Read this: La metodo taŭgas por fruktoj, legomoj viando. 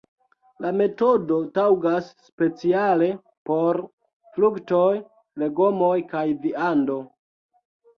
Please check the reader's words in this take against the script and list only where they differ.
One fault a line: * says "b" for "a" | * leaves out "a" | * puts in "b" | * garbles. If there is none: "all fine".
* puts in "speciale"
* puts in "kaj"